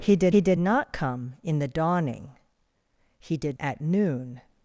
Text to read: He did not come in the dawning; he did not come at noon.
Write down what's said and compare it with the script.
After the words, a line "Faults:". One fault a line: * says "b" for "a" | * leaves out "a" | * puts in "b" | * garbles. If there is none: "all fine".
He did he did not come in the dawning; he did at noon.
Faults:
* puts in "he did"
* leaves out "not come"